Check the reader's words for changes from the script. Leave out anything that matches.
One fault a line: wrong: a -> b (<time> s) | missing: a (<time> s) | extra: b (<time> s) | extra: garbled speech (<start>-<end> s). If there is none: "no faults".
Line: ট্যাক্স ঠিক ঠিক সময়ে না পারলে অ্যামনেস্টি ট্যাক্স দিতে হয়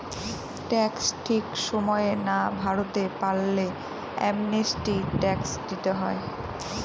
missing: ঠিক (1.4 s)
extra: ভরতে (2.6 s)